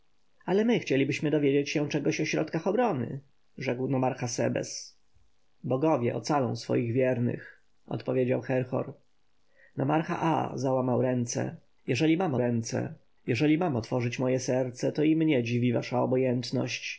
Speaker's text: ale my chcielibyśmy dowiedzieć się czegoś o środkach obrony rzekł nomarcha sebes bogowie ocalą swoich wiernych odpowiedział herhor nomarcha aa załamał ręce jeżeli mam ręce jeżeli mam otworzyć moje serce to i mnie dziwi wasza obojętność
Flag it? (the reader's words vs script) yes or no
no